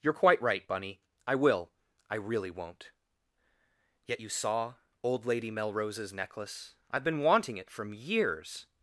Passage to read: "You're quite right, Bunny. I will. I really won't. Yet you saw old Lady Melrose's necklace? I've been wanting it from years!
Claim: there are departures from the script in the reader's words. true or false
false